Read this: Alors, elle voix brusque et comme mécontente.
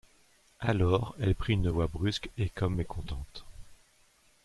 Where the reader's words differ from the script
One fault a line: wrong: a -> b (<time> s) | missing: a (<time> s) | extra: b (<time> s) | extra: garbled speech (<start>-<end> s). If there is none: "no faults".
extra: prit une (1.4 s)